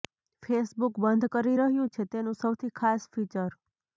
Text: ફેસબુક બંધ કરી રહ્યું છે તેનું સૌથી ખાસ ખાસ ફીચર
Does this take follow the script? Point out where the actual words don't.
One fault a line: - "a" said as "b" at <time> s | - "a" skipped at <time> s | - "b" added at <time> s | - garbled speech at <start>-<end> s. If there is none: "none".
- "ખાસ" skipped at 3.1 s